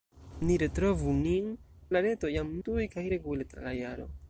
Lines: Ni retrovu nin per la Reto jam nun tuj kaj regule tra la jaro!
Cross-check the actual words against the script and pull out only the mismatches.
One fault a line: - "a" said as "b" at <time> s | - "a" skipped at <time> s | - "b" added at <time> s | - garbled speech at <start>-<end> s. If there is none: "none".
- "per" skipped at 1.5 s
- "nun" skipped at 2.5 s